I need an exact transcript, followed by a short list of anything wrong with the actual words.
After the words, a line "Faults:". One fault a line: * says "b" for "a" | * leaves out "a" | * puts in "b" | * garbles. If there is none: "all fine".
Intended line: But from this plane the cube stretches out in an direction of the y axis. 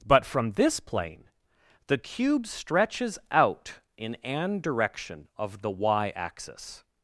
But from this plane the cube stretches out in an direction of the y axis.
Faults:
all fine